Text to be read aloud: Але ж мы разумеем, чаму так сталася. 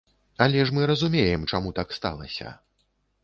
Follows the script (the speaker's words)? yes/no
yes